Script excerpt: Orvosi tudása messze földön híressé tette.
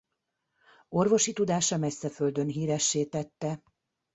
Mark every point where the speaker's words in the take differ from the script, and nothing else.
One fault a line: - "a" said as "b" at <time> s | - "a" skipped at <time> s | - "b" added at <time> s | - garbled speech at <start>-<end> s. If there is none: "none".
none